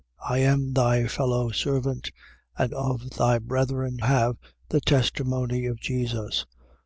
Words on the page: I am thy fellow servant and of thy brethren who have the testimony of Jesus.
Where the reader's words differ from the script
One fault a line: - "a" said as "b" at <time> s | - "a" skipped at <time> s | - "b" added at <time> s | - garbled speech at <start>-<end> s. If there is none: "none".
- "who" skipped at 4.0 s